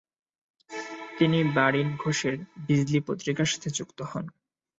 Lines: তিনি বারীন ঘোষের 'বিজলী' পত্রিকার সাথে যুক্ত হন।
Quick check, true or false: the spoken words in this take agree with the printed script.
true